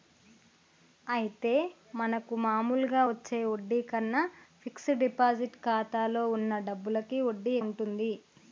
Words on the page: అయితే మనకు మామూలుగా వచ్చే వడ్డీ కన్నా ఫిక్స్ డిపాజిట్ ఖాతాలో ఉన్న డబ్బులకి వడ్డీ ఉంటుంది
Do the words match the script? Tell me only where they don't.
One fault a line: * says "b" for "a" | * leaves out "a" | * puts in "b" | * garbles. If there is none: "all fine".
all fine